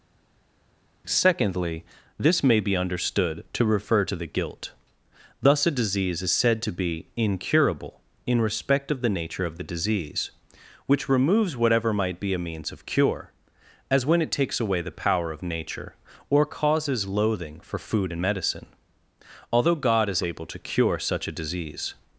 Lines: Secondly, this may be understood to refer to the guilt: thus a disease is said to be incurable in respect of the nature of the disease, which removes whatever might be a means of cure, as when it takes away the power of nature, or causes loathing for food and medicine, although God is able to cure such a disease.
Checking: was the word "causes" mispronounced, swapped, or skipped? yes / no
no